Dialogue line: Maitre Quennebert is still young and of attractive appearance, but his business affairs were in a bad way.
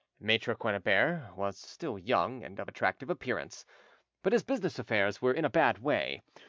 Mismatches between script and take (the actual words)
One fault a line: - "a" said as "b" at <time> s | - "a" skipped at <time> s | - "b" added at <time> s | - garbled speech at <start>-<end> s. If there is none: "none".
- "is" said as "was" at 1.4 s